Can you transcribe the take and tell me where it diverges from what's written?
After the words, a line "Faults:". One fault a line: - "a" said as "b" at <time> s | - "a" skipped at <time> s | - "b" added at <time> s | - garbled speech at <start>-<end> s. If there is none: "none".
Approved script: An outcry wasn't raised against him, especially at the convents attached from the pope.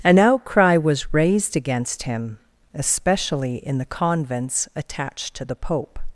An outcry was raised against him, especially in the convents attached to the pope.
Faults:
- "wasn't" said as "was" at 0.8 s
- "at" said as "in" at 3.6 s
- "from" said as "to" at 5.3 s